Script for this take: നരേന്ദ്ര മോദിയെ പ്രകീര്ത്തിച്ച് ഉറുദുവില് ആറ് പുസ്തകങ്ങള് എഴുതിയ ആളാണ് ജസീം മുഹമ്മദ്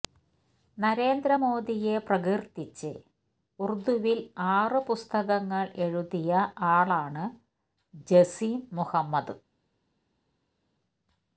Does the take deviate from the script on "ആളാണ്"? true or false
false